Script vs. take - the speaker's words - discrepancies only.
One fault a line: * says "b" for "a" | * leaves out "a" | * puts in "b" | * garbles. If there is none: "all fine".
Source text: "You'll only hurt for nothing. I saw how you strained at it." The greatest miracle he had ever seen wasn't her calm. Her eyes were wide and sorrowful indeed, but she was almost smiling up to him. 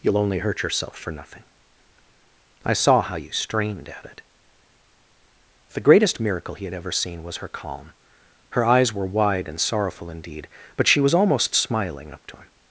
* puts in "yourself"
* says "was" for "wasn't"